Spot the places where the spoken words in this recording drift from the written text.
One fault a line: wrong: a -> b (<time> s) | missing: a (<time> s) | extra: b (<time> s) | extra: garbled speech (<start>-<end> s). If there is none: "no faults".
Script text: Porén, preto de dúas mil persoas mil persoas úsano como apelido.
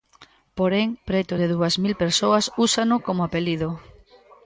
missing: mil persoas (2.5 s)